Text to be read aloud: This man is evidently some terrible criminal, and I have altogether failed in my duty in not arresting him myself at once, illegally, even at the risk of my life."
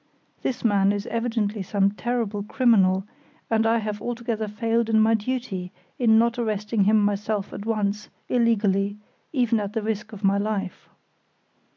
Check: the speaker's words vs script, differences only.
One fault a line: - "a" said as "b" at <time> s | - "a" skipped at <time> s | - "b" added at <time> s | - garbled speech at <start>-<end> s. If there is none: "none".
none